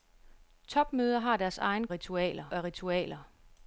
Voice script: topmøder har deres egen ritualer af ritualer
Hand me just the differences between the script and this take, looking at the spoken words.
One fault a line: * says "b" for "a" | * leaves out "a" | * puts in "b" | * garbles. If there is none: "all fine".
all fine